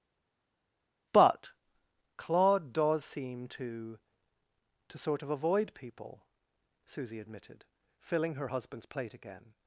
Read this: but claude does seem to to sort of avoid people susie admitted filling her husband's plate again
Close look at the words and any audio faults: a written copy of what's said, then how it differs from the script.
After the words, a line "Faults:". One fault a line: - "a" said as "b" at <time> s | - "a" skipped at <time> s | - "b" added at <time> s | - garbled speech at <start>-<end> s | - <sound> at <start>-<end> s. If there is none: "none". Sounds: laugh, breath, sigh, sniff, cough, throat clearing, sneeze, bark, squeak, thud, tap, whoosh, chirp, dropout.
but claude does seem to to sort of avoid people susie admitted filling her husband's plate again
Faults:
none